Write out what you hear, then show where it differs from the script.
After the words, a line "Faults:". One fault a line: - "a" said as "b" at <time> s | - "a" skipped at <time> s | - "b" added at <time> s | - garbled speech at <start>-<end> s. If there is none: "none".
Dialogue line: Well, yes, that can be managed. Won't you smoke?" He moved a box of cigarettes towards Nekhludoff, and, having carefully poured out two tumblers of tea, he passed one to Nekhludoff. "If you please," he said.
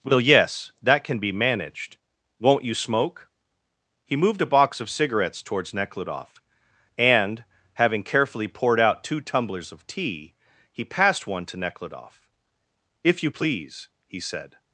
Well, yes, that can be managed. Won't you smoke?" He moved a box of cigarettes towards Nekhludoff, and, having carefully poured out two tumblers of tea, he passed one to Nekhludoff. "If you please," he said.
Faults:
none